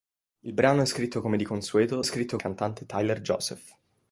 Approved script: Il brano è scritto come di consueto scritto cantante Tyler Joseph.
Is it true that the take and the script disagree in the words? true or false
false